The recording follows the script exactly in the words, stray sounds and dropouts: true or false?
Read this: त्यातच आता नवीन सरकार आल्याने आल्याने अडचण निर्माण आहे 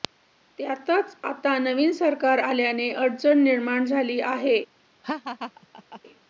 false